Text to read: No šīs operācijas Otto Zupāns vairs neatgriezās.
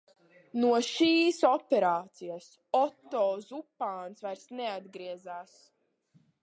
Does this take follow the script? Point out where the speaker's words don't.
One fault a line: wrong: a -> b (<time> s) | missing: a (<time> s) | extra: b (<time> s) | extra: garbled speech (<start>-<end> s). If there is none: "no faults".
no faults